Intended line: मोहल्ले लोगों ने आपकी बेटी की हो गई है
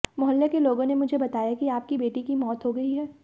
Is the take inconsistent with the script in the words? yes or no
yes